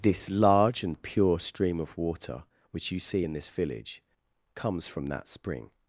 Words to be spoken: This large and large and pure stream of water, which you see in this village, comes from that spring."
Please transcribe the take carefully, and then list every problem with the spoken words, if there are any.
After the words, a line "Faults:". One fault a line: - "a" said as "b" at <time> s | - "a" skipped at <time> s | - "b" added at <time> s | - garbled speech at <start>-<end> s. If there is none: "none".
This large and pure stream of water, which you see in this village, comes from that spring."
Faults:
- "large and" skipped at 1.0 s